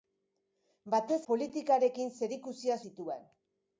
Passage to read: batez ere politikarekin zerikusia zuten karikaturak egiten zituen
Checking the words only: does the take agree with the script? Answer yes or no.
no